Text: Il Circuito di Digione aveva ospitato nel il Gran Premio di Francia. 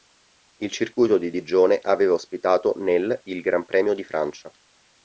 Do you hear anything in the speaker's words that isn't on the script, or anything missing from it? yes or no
no